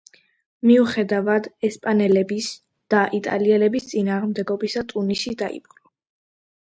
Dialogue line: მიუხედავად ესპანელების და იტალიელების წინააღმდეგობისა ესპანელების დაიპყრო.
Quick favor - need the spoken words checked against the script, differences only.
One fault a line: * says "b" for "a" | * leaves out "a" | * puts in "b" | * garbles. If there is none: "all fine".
* says "ტუნისი" for "ესპანელების"